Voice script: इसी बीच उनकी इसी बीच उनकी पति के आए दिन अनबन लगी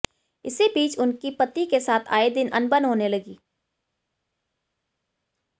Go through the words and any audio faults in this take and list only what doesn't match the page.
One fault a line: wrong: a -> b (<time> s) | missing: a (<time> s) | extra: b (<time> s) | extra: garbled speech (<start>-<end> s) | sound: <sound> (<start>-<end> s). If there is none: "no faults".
missing: इसी बीच उनकी (1.3 s)
extra: साथ (1.8 s)
extra: होने (2.9 s)